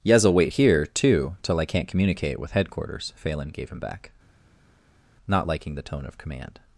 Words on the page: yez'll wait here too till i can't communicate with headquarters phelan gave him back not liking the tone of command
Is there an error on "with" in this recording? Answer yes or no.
no